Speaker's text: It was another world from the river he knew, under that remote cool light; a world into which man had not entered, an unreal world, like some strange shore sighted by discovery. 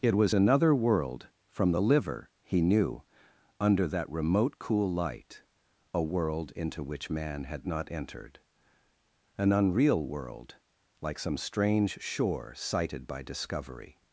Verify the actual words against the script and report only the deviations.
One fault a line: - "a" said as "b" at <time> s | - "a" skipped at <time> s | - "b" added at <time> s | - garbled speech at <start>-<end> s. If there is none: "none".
- "river" said as "liver" at 1.8 s